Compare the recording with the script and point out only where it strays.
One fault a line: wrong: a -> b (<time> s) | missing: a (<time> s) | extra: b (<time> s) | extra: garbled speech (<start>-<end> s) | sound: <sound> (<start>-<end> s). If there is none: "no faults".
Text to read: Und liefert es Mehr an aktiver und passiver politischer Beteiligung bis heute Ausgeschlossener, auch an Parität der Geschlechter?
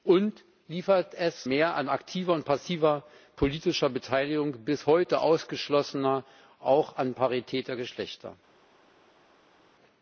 no faults